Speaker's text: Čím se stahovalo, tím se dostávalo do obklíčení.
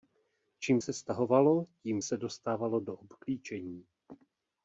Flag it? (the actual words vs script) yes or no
no